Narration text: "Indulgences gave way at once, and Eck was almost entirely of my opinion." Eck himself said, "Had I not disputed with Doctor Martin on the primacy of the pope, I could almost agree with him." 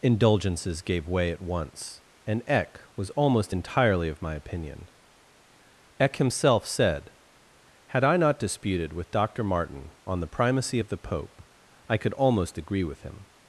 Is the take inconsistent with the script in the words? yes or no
no